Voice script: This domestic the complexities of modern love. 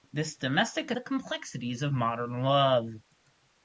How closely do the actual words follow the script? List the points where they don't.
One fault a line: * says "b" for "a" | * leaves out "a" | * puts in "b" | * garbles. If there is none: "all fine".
all fine